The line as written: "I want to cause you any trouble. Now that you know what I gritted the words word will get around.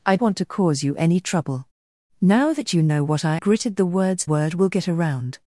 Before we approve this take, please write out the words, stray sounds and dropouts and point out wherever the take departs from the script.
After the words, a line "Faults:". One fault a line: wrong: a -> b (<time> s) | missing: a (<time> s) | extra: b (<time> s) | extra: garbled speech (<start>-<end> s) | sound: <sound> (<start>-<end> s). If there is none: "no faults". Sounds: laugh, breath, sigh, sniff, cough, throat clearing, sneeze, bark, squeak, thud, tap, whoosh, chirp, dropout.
"I want to cause you any trouble. Now that you know what I gritted the words word will get around.
Faults:
no faults